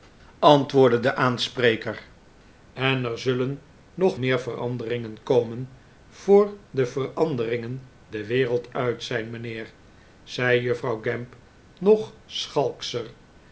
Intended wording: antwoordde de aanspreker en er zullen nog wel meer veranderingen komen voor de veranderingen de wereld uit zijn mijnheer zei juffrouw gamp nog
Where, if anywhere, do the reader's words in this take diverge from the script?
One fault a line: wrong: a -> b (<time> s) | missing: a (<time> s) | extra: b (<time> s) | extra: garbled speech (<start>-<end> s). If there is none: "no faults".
missing: wel (4.2 s)